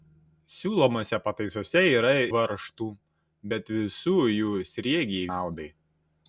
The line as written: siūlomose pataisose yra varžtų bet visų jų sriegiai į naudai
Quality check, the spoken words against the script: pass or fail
pass